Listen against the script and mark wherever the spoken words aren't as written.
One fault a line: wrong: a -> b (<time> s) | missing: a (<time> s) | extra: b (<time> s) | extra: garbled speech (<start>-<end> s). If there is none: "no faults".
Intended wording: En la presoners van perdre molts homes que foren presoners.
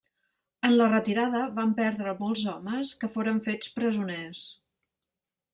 wrong: presoners -> retirada (0.9 s)
extra: fets (3.5 s)